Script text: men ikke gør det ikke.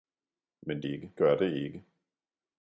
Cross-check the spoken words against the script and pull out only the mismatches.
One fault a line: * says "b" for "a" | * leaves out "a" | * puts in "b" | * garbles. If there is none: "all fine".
all fine